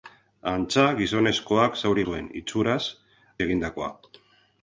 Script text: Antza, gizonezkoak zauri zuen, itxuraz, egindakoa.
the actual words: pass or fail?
pass